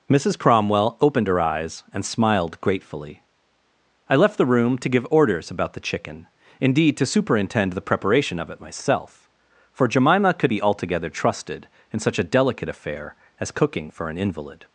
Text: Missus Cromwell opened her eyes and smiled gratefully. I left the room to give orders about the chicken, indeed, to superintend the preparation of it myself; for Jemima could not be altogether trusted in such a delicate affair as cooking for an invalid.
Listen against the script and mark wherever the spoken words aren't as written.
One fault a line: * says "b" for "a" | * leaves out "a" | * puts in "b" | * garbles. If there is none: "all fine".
* leaves out "not"